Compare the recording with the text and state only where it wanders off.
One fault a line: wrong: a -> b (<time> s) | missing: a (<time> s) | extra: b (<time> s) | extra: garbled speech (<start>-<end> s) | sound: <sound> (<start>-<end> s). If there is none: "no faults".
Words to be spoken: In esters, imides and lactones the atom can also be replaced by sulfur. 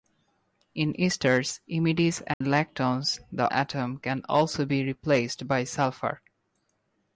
sound: dropout (2.3-2.4 s)